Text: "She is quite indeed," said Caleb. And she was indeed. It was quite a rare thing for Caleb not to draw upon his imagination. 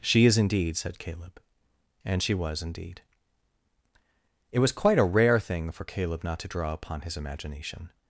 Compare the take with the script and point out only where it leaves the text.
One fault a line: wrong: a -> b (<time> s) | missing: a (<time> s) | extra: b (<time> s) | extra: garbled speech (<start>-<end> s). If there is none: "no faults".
missing: quite (0.4 s)